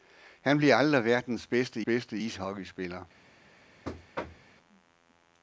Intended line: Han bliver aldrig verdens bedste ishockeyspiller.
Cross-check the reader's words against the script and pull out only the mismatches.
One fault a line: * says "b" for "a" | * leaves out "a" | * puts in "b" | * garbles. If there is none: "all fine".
* puts in "bedste"